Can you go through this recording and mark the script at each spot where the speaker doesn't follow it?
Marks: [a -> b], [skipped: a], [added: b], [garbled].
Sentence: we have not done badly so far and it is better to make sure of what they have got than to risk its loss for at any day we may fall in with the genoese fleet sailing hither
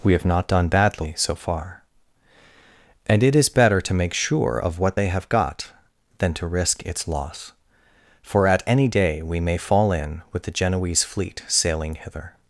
we have not done badly so far and it is better to make sure of what they have got than to risk its loss for at any day we may fall in with the genoese fleet sailing hither